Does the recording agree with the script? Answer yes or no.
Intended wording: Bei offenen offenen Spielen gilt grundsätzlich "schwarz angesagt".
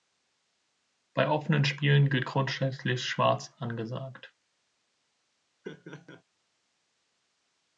no